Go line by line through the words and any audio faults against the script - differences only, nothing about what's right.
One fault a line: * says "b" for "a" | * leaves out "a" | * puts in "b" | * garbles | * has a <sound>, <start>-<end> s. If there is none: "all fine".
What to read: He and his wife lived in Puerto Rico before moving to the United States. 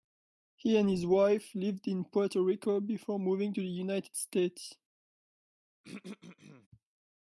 * has a throat clearing, 5.8-6.7 s